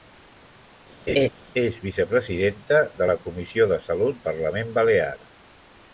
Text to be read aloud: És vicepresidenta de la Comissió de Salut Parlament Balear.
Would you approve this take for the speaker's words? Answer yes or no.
yes